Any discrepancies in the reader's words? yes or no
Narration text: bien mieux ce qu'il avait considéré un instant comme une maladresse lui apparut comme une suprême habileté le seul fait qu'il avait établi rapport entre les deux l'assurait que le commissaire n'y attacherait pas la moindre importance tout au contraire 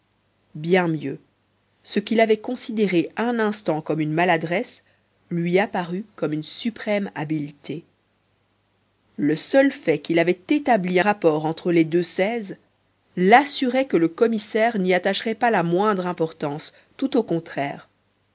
no